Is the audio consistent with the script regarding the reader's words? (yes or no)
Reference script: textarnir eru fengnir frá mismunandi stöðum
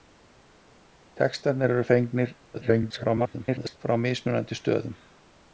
no